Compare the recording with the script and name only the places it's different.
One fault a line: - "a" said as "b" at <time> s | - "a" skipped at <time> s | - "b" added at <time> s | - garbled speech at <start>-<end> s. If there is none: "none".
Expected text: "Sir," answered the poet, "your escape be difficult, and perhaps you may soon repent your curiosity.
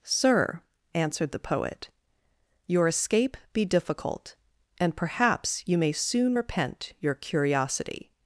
none